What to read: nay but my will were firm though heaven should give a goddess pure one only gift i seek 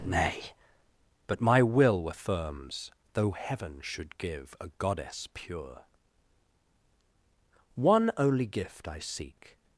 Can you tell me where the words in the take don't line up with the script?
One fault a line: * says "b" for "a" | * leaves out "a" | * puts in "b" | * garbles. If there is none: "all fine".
* says "firms" for "firm"